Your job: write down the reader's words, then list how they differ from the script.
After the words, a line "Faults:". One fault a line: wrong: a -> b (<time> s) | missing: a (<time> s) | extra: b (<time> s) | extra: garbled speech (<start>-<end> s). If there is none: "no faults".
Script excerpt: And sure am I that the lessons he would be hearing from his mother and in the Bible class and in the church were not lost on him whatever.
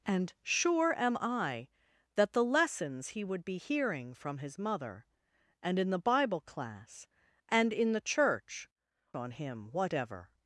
And sure am I that the lessons he would be hearing from his mother and in the Bible class and in the church on him whatever.
Faults:
missing: were not lost (8.7 s)